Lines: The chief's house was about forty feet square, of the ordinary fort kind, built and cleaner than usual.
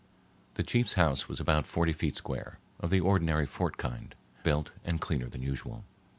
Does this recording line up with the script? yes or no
yes